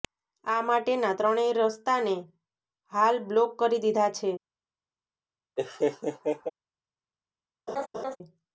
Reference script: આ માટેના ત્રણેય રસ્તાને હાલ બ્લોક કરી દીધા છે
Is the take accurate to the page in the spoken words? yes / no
yes